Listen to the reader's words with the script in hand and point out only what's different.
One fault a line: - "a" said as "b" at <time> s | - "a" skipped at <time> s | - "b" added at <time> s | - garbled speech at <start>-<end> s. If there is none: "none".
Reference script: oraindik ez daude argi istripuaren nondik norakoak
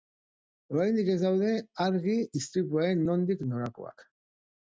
none